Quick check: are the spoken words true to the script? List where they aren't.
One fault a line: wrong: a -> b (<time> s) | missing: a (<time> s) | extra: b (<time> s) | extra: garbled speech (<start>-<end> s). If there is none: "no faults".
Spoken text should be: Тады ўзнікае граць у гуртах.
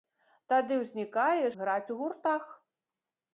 no faults